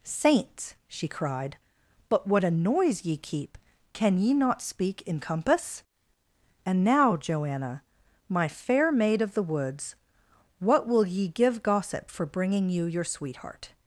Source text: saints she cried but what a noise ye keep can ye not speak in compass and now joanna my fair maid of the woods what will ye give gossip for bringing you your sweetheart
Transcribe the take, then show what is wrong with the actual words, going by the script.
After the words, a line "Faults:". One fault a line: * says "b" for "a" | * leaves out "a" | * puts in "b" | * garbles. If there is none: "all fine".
saints she cried but what a noise ye keep can ye not speak in compass and now joanna my fair maid of the woods what will ye give gossip for bringing you your sweetheart
Faults:
all fine